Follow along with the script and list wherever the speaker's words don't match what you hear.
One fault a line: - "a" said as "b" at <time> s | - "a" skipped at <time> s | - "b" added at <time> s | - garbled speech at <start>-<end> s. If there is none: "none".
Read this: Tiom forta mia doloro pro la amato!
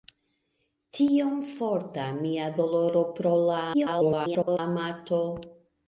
- garbled speech at 3.7-4.6 s